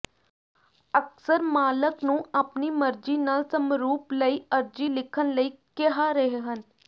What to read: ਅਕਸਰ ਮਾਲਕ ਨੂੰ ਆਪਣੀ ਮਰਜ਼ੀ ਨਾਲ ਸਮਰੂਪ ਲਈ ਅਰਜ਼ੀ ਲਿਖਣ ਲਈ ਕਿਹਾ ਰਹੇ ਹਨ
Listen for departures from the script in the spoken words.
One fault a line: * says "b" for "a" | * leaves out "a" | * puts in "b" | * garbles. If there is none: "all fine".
all fine